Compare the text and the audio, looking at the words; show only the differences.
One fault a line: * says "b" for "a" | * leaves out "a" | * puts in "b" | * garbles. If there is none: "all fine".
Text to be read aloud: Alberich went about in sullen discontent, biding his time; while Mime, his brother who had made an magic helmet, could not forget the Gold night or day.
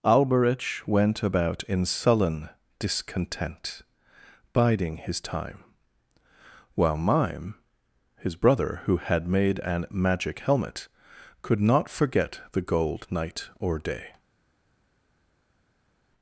all fine